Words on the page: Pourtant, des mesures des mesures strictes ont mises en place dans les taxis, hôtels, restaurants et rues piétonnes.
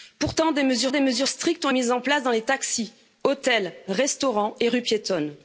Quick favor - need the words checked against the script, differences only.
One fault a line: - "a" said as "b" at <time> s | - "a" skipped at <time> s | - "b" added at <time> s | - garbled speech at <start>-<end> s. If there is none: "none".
none